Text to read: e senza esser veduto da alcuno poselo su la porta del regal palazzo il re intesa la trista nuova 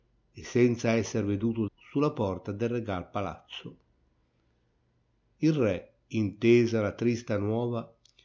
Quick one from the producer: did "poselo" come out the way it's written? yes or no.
no